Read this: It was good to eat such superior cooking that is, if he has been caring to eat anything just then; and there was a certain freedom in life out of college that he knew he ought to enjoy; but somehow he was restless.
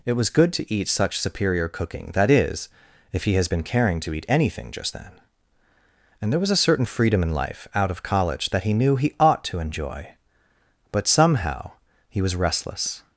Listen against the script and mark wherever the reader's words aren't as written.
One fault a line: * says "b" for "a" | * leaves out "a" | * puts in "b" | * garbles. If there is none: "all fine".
all fine